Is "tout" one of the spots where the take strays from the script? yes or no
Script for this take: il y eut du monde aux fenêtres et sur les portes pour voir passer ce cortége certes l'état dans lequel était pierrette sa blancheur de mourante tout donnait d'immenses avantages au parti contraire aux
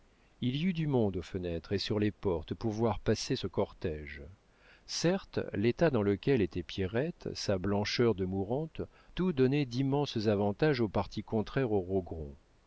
no